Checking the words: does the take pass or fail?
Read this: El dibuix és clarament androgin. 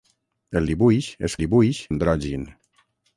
fail